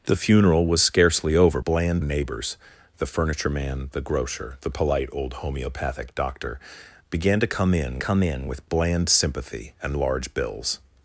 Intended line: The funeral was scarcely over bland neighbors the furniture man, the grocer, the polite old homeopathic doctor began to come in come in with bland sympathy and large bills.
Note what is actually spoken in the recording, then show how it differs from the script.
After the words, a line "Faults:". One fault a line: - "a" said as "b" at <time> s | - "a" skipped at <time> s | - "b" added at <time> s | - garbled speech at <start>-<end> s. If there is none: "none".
The funeral was scarcely over bland neighbors the furniture man, the grocer, the polite old homeopathic doctor began to come in come in with bland sympathy and large bills.
Faults:
none